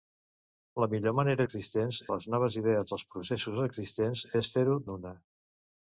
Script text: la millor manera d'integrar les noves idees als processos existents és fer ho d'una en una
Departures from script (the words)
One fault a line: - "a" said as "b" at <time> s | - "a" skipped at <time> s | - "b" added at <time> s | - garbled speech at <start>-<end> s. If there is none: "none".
- "d'integrar" said as "existents" at 1.4 s
- "d'una" skipped at 4.8 s